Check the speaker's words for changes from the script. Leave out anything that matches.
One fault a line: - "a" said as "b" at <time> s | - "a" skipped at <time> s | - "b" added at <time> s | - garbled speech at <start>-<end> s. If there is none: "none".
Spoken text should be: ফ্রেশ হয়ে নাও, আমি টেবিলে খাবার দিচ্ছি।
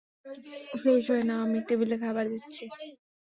none